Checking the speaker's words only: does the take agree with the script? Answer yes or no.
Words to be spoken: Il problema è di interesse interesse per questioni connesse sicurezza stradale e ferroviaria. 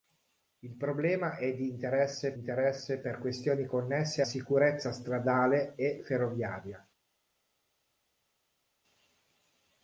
yes